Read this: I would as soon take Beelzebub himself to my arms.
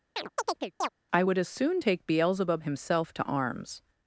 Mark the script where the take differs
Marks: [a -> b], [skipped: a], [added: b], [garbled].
I would as soon take Beelzebub himself to [skipped: my] arms.